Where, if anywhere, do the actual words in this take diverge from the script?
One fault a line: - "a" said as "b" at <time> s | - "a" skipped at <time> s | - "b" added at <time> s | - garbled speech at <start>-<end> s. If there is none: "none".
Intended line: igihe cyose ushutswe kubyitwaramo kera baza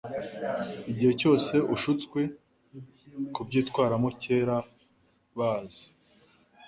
none